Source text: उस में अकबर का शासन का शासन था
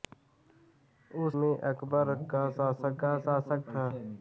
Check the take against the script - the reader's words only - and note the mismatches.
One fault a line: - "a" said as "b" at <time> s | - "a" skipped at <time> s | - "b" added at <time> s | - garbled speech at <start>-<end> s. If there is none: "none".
none